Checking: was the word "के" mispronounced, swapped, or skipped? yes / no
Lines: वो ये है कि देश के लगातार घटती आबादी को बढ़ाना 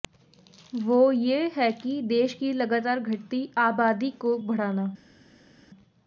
yes